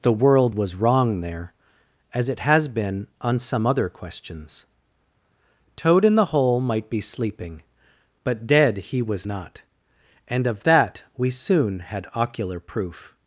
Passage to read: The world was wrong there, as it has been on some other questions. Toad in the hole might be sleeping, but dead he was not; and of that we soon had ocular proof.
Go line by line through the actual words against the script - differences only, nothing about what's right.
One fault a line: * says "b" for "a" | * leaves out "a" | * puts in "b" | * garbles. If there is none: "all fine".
all fine